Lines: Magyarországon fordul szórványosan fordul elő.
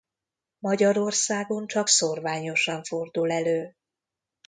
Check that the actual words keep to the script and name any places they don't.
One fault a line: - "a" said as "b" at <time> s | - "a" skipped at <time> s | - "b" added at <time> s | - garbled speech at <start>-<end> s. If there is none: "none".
- "fordul" said as "csak" at 1.7 s